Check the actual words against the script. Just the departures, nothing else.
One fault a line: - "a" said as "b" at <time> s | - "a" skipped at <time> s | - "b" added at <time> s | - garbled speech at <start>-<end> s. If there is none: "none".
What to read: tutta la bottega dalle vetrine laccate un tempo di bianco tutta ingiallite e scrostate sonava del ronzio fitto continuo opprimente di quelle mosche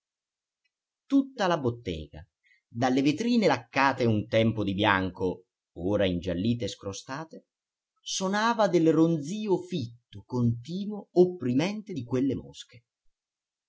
- "tutta" said as "ora" at 5.7 s